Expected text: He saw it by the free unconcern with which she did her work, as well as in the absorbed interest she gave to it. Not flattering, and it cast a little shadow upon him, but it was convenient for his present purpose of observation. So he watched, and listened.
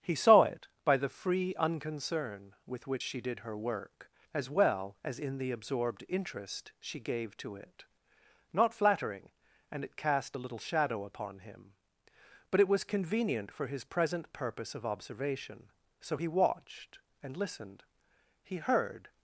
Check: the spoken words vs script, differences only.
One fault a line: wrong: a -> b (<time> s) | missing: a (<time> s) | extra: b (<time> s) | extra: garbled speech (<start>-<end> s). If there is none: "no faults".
extra: He heard (18.4 s)